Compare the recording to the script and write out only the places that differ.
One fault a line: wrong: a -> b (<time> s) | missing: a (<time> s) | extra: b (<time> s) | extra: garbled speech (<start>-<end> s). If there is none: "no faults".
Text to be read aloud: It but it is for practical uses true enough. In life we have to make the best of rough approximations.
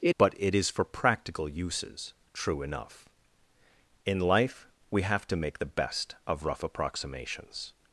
no faults